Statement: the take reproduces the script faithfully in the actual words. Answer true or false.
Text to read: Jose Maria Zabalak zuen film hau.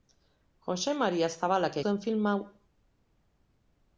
true